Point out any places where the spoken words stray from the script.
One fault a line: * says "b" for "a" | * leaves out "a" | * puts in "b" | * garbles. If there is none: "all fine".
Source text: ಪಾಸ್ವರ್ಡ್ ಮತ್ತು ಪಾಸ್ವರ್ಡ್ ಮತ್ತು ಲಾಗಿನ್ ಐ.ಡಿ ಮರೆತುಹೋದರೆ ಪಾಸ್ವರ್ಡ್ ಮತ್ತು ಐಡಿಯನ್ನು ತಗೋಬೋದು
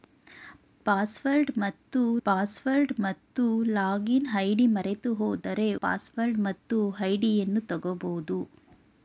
all fine